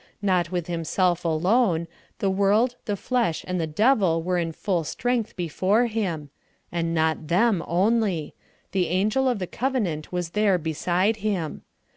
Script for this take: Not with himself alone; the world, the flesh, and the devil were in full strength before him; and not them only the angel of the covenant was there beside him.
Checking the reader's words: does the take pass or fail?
pass